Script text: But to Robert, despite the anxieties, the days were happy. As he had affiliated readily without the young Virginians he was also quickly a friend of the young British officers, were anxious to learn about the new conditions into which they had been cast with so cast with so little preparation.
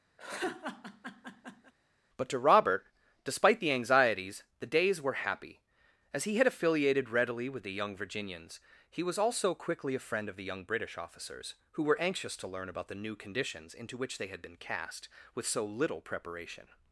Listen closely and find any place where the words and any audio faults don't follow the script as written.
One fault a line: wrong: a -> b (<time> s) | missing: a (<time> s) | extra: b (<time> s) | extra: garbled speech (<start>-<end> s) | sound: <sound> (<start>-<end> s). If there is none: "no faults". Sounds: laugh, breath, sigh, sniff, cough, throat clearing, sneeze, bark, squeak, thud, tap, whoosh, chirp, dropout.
sound: laugh (0.2-1.7 s)
wrong: without -> with (7.5 s)
extra: who (11.7 s)
missing: cast with so (15.6 s)